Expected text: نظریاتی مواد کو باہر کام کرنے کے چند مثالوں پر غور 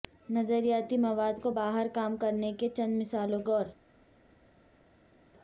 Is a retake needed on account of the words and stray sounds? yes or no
yes